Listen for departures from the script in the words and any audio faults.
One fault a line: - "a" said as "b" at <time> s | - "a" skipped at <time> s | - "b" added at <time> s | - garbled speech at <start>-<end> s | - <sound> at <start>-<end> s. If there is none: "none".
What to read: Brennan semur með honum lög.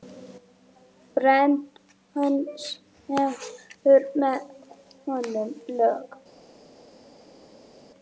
none